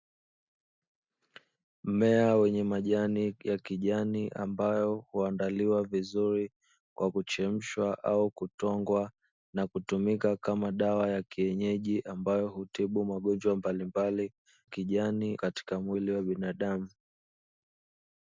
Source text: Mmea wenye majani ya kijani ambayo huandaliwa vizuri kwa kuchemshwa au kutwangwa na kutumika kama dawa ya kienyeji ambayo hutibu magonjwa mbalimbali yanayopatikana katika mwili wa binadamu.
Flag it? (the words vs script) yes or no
yes